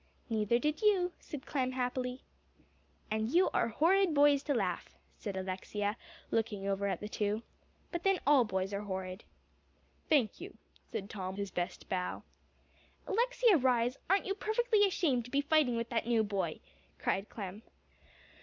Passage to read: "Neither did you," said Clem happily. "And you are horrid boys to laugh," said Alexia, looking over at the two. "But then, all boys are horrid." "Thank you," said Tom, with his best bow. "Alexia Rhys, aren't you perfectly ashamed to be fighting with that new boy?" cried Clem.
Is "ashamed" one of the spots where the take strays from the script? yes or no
no